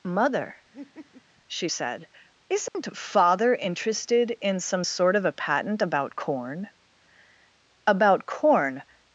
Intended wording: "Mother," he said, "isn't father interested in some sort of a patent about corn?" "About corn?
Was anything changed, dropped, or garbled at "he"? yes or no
yes